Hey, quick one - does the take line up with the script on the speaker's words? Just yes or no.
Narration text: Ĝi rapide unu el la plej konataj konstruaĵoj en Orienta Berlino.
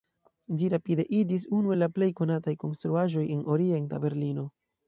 no